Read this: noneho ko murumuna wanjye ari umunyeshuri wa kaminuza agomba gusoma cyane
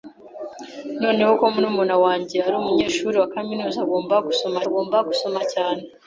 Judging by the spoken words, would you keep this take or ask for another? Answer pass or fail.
fail